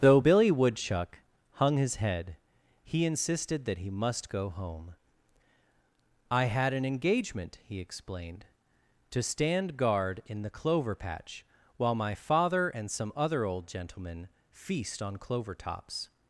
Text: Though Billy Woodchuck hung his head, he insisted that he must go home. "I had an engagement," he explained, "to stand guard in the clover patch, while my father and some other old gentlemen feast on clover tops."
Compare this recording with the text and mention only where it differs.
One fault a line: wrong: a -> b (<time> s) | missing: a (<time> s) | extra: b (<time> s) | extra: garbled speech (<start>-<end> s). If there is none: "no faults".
no faults